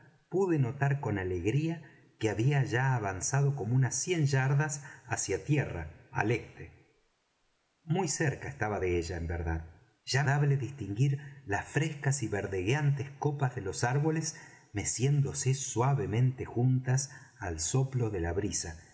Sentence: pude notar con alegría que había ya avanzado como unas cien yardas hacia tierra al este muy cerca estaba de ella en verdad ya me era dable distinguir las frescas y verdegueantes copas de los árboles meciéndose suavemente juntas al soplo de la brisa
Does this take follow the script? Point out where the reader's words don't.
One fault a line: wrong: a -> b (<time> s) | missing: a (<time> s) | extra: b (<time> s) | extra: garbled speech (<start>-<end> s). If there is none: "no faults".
missing: me era (10.2 s)